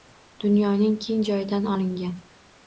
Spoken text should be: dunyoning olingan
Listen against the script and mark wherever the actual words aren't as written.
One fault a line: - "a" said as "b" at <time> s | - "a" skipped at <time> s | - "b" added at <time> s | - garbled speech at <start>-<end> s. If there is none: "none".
- "keng joyidan" added at 1.0 s